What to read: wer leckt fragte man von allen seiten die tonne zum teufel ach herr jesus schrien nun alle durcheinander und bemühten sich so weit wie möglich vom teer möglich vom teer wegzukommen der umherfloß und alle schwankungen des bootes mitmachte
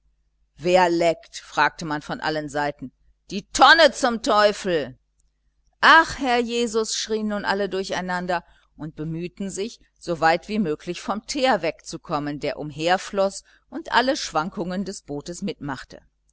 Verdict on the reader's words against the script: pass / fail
fail